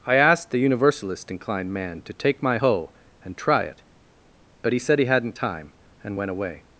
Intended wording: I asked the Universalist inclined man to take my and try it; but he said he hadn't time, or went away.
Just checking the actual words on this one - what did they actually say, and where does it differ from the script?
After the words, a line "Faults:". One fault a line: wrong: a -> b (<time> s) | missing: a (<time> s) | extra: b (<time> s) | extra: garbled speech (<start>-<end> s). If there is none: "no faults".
I asked the Universalist inclined man to take my hoe and try it; but he said he hadn't time, and went away.
Faults:
extra: hoe (2.5 s)
wrong: or -> and (6.0 s)